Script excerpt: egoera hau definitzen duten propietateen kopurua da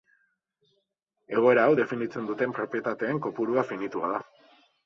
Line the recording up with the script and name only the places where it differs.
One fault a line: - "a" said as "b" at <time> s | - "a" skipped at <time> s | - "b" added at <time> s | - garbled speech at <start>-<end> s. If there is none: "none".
- "finitua" added at 3.7 s